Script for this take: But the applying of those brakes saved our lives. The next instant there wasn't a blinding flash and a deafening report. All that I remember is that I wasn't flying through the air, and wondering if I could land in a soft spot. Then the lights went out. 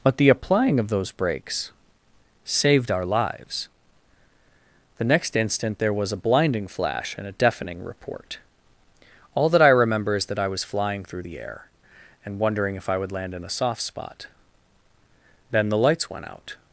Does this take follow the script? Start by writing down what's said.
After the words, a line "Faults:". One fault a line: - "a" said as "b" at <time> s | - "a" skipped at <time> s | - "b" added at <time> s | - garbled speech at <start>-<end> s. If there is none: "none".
But the applying of those brakes saved our lives. The next instant there was a blinding flash and a deafening report. All that I remember is that I was flying through the air, and wondering if I would land in a soft spot. Then the lights went out.
Faults:
- "wasn't" said as "was" at 5.9 s
- "wasn't" said as "was" at 10.5 s
- "could" said as "would" at 13.0 s